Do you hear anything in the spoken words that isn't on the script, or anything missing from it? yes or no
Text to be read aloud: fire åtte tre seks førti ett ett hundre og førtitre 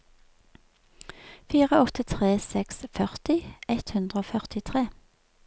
yes